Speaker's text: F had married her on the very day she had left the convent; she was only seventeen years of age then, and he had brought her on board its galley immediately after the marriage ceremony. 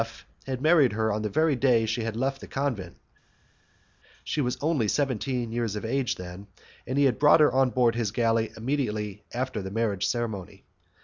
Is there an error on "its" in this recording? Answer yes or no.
yes